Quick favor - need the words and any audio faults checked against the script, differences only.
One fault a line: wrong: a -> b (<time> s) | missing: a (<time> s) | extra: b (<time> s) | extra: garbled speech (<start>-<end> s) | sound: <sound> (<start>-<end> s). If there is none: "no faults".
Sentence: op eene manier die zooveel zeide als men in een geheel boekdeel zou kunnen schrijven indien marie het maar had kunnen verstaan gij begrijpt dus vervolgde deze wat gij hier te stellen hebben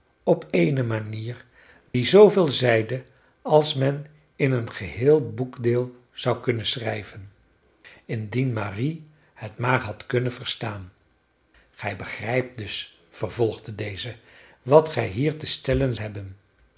sound: dropout (1.9-1.9 s)